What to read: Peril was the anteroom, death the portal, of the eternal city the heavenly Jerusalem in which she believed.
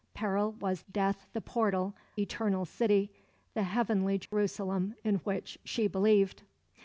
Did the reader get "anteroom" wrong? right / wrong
wrong